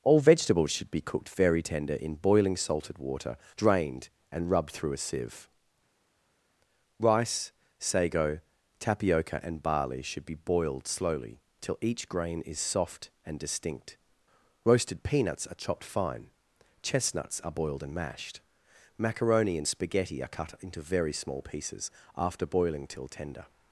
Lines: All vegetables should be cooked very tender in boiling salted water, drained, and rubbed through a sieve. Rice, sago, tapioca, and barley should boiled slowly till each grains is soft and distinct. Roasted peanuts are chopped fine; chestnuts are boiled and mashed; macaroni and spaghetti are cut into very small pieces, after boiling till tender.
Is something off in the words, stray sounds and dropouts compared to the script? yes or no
yes